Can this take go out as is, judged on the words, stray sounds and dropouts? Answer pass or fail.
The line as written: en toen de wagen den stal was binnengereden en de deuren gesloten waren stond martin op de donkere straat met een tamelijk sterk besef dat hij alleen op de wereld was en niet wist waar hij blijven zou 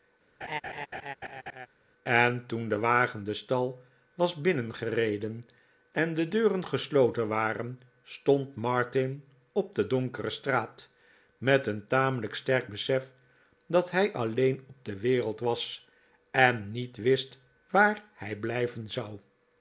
fail